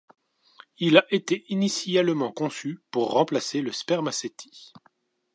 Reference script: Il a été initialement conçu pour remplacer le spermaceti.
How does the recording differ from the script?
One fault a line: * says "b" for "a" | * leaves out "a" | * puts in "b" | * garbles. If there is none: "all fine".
all fine